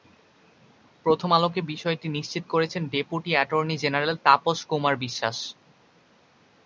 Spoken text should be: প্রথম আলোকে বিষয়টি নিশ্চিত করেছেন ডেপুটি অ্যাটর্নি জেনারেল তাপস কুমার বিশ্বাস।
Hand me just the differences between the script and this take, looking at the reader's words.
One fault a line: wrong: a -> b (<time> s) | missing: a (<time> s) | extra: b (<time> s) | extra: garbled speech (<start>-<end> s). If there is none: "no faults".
no faults